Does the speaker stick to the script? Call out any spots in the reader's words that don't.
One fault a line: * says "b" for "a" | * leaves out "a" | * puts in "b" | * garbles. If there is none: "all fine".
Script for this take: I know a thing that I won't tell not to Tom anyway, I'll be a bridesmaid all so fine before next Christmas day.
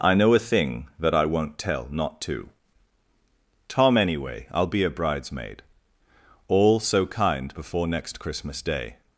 * says "kind" for "fine"